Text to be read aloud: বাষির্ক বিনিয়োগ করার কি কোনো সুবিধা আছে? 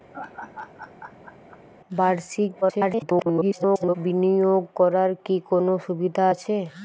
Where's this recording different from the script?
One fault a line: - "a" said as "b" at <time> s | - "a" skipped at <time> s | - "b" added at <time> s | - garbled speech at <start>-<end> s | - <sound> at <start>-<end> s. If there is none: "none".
- laugh at 0.1-1.6 s
- garbled speech at 2.6-4.0 s